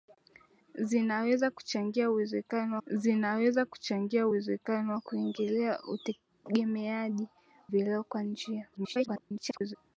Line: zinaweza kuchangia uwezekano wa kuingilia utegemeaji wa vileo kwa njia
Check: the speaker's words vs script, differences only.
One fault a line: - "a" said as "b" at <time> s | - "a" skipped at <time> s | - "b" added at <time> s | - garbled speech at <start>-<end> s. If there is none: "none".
- "zinaweza kuchangia uwezekano" added at 2.9 s
- "wa" skipped at 7.3 s
- garbled speech at 8.7-9.8 s